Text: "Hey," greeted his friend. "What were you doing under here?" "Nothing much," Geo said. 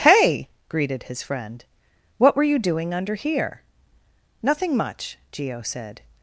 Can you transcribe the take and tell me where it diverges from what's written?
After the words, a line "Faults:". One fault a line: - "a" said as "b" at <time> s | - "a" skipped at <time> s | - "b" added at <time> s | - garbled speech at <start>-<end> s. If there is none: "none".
"Hey," greeted his friend. "What were you doing under here?" "Nothing much," Geo said.
Faults:
none